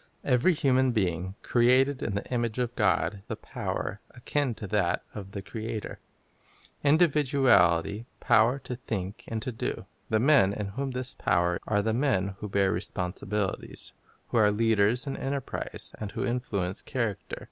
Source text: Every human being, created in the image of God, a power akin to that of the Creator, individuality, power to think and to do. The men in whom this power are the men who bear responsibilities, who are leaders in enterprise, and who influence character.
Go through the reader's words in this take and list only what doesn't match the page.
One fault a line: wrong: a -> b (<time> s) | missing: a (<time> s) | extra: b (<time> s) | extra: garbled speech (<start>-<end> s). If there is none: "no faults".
no faults